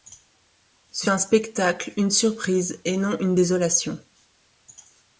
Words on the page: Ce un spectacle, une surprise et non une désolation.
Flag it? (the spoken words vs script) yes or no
no